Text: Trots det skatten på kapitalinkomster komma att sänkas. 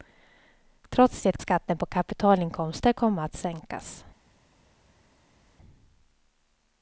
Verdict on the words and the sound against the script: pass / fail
pass